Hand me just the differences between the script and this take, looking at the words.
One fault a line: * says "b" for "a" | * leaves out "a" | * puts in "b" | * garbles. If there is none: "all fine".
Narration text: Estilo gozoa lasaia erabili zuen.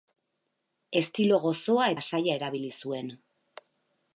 all fine